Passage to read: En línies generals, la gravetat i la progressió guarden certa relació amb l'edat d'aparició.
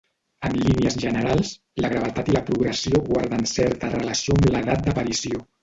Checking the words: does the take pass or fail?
pass